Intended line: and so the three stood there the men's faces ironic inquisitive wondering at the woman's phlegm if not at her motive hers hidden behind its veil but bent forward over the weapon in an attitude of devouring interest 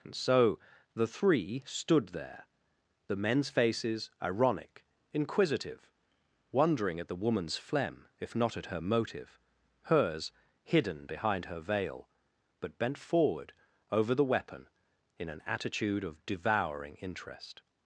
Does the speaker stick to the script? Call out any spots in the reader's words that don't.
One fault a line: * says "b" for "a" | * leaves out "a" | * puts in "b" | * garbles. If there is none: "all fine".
* says "her" for "its"